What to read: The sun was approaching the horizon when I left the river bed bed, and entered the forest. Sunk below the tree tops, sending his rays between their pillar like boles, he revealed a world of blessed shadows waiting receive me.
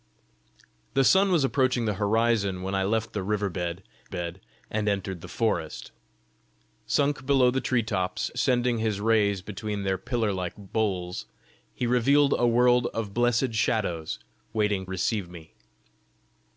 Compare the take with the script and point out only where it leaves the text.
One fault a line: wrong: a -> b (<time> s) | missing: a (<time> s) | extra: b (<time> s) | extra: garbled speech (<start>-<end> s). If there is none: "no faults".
no faults